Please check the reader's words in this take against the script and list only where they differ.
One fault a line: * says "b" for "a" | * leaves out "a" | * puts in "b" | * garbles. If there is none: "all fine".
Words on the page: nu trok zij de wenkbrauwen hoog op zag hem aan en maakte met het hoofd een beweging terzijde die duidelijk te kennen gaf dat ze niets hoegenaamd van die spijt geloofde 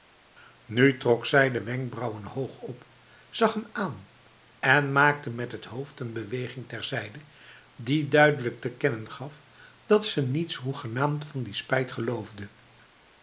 all fine